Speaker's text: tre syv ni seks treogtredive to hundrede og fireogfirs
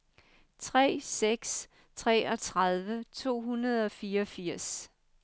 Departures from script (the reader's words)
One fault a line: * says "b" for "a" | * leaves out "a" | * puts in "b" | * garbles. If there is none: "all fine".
* leaves out "syv ni"